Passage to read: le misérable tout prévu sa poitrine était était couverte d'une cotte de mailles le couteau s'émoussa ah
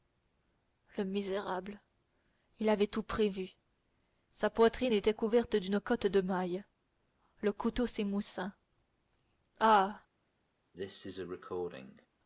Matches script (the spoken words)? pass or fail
fail